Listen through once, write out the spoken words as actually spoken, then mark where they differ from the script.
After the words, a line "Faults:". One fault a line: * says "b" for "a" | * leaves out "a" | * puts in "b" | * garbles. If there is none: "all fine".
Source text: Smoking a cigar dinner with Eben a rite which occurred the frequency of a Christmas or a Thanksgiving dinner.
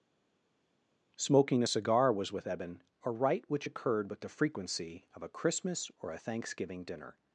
Smoking a cigar was with Eben a rite which occurred with the frequency of a Christmas or a Thanksgiving dinner.
Faults:
* says "was" for "dinner"
* puts in "with"